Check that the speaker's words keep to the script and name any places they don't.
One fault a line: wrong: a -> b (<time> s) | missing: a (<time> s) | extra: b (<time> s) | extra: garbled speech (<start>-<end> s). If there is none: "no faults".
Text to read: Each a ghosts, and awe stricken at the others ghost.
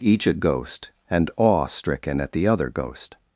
wrong: ghosts -> ghost (0.3 s)
wrong: others -> other (2.5 s)